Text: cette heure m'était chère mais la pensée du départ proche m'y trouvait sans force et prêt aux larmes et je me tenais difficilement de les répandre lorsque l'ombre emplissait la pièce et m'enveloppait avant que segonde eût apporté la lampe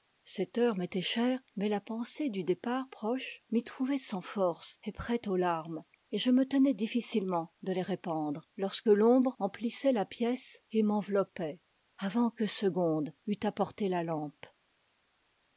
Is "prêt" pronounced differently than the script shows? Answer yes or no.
no